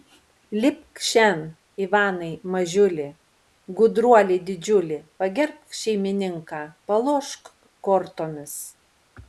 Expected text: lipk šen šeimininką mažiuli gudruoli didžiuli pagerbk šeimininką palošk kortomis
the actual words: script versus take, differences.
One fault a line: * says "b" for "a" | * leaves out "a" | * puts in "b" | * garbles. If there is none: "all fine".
* says "ivanai" for "šeimininką"